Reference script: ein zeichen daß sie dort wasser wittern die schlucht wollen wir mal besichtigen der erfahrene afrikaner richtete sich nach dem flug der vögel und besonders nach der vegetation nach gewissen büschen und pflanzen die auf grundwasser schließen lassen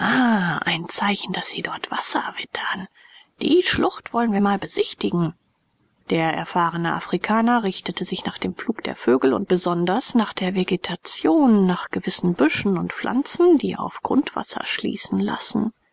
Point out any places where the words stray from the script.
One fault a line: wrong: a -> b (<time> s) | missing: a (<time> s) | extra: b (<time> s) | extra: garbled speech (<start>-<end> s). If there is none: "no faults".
no faults